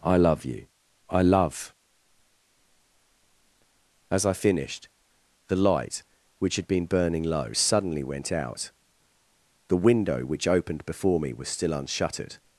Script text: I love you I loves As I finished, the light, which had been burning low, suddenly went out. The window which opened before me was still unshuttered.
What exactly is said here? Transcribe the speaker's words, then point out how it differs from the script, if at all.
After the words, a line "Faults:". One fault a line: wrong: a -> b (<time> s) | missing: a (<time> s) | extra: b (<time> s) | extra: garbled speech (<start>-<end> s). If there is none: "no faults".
I love you I love As I finished, the light, which had been burning low, suddenly went out. The window which opened before me was still unshuttered.
Faults:
wrong: loves -> love (1.2 s)